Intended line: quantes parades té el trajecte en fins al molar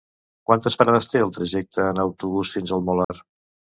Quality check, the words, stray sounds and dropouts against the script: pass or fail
fail